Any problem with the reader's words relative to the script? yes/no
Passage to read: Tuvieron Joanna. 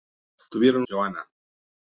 no